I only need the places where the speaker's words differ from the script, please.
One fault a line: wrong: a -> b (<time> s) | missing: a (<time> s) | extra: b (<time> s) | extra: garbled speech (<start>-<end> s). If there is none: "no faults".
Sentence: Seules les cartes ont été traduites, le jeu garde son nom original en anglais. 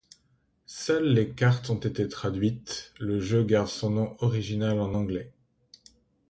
no faults